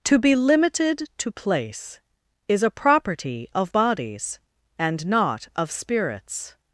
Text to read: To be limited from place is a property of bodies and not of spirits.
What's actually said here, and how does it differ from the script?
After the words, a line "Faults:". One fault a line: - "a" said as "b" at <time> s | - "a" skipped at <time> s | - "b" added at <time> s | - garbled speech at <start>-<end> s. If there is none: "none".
To be limited to place is a property of bodies and not of spirits.
Faults:
- "from" said as "to" at 1.2 s